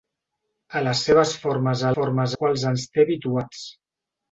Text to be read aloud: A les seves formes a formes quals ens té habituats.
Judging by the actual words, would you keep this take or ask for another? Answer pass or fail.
pass